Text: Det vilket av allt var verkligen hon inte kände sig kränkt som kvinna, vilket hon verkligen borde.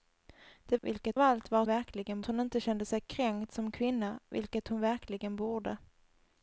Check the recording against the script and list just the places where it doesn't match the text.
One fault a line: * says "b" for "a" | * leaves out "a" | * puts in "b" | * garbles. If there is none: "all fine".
all fine